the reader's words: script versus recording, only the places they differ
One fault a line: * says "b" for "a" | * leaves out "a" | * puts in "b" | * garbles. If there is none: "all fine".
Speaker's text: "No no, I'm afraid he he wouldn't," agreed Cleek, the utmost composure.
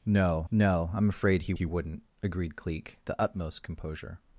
all fine